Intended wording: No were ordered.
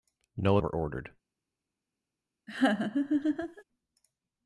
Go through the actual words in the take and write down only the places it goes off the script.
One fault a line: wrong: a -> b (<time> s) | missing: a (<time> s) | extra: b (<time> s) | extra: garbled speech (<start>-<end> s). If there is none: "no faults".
no faults